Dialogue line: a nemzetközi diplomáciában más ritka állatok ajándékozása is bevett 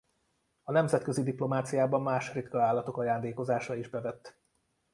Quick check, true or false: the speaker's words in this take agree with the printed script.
true